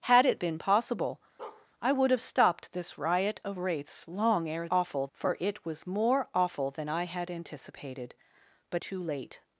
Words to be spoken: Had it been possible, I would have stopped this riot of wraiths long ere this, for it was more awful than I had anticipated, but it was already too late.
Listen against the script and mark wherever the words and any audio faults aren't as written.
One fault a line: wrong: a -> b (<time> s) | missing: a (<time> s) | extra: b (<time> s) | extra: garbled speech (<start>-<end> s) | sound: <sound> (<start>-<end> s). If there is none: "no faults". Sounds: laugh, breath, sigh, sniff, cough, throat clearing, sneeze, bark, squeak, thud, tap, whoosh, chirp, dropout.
sound: bark (1.4-1.7 s)
wrong: this -> awful (4.7 s)
missing: it was already (8.8 s)